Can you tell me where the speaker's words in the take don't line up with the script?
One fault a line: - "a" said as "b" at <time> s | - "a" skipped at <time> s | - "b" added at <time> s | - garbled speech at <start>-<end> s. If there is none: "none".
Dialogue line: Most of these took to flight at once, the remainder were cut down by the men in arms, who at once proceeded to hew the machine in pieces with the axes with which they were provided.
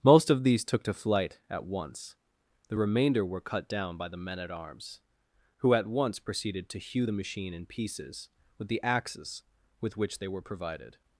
- "in" said as "at" at 4.4 s